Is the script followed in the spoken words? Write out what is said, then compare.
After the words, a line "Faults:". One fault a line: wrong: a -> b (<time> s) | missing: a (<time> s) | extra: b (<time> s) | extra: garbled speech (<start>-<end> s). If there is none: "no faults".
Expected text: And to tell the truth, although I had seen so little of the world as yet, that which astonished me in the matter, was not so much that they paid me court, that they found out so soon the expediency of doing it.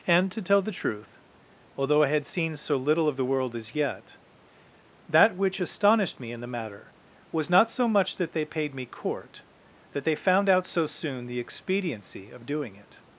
And to tell the truth, although I had seen so little of the world as yet, that which astonished me in the matter, was not so much that they paid me court, that they found out so soon the expediency of doing it.
Faults:
no faults